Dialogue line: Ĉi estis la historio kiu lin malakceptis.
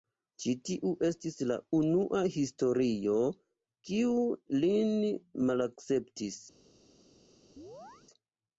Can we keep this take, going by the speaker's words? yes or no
no